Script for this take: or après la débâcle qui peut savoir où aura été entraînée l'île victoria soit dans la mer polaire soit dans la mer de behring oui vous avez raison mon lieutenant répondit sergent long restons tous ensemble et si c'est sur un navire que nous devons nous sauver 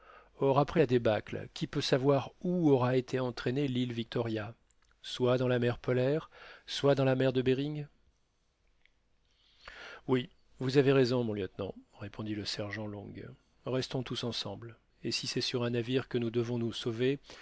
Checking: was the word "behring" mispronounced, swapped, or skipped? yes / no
no